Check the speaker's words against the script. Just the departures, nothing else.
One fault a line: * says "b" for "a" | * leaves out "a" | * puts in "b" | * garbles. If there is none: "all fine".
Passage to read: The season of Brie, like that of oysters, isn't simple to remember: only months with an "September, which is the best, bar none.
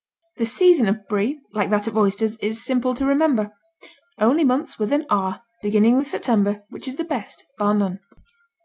* says "is" for "isn't"
* puts in "R beginning with"